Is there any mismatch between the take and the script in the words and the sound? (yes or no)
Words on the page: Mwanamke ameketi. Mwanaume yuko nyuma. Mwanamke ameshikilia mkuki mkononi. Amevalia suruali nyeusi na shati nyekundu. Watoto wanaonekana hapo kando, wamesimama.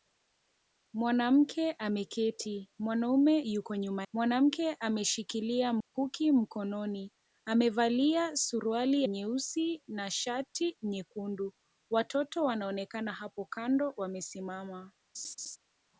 yes